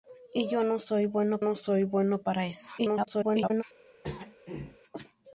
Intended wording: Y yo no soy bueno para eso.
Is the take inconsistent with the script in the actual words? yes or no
yes